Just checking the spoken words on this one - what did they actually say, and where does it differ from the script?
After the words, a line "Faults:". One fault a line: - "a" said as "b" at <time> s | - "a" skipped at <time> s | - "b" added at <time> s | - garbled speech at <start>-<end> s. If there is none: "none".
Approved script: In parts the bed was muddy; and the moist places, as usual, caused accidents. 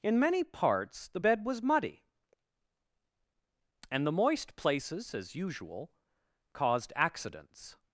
In many parts the bed was muddy; and the moist places, as usual, caused accidents.
Faults:
- "many" added at 0.2 s